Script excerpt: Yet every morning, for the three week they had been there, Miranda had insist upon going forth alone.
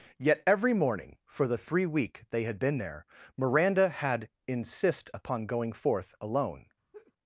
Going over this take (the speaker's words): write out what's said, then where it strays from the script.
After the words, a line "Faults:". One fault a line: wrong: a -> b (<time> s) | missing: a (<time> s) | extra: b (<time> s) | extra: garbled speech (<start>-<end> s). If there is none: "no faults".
Yet every morning, for the three week they had been there, Miranda had insist upon going forth alone.
Faults:
no faults